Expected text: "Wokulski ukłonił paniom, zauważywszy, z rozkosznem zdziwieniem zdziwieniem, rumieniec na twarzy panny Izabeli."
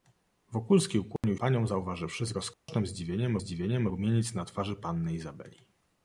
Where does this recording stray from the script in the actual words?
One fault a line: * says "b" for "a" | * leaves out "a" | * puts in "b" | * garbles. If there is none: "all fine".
all fine